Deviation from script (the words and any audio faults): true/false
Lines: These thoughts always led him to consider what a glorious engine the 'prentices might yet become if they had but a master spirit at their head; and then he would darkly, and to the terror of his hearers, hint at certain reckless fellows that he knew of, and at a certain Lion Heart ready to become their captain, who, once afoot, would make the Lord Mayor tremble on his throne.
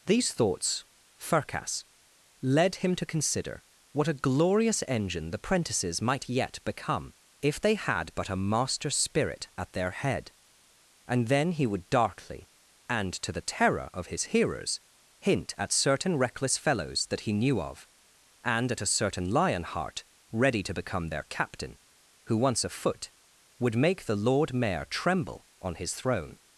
true